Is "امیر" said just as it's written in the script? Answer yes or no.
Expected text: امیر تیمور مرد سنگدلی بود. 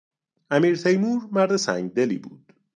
yes